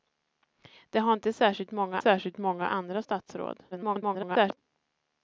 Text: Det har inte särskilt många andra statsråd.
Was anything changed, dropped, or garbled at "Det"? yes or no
no